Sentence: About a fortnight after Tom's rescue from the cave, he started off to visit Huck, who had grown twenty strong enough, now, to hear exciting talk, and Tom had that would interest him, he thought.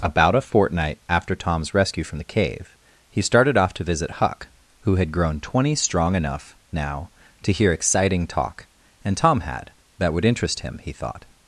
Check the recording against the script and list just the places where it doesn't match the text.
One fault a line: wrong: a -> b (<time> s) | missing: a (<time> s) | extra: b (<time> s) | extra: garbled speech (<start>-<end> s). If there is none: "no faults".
no faults